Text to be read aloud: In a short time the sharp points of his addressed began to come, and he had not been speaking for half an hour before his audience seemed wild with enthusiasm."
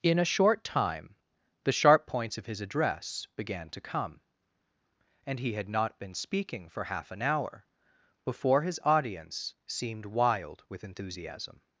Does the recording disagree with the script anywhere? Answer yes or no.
yes